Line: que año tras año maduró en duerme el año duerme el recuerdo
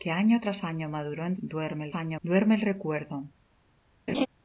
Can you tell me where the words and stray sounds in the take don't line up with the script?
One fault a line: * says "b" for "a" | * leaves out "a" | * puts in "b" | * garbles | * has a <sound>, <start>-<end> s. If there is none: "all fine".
* has a laugh, 4.1-4.3 s